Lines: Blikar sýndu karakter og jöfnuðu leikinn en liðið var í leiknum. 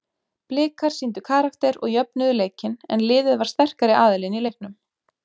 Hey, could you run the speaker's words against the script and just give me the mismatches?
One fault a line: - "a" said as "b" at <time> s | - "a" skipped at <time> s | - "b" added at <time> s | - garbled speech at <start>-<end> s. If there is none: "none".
- "sterkari aðilinn" added at 3.5 s